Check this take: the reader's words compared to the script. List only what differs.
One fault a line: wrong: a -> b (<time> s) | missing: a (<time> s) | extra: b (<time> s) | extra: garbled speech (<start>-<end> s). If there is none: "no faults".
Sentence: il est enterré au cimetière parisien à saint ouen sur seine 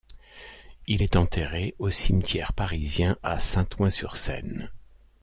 no faults